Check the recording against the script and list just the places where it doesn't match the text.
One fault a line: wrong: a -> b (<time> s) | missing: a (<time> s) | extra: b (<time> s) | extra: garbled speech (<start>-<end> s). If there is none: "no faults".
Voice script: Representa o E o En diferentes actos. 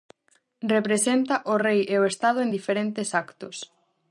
extra: Rei (1.6 s)
extra: Estado (2.1 s)